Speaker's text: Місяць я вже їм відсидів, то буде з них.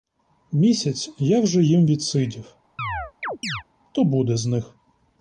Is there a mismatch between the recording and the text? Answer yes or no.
no